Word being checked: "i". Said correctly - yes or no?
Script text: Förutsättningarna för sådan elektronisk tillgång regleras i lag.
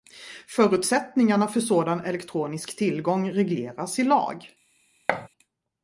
yes